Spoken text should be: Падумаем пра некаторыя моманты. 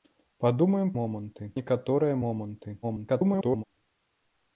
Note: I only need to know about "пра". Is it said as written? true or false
false